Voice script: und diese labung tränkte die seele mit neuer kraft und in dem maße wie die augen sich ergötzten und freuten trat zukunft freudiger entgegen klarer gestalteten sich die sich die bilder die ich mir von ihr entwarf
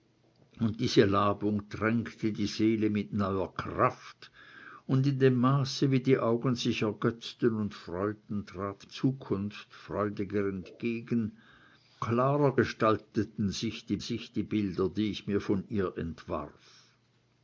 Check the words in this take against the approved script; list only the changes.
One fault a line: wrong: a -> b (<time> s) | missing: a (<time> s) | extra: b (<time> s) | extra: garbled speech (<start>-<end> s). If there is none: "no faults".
no faults